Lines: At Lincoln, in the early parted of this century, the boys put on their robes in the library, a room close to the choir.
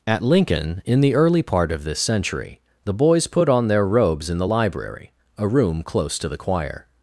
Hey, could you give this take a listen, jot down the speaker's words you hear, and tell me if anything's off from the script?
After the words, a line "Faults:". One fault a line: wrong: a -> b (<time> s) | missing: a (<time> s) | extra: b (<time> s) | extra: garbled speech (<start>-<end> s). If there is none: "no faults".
At Lincoln, in the early part of this century, the boys put on their robes in the library, a room close to the choir.
Faults:
wrong: parted -> part (1.4 s)